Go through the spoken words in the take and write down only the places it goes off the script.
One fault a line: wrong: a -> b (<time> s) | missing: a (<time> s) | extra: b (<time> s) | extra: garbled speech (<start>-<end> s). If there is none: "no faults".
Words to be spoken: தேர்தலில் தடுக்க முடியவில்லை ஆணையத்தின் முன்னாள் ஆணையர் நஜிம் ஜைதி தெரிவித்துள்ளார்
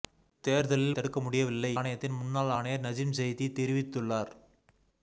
no faults